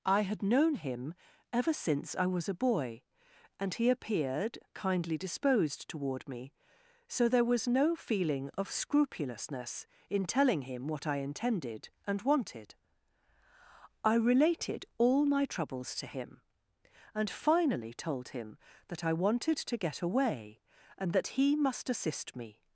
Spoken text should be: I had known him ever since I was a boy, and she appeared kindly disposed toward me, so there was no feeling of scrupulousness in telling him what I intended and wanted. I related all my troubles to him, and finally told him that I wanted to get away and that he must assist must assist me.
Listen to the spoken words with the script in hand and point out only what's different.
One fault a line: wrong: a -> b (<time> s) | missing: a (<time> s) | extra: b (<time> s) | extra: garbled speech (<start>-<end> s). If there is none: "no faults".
wrong: she -> he (3.8 s)
missing: must assist (22.4 s)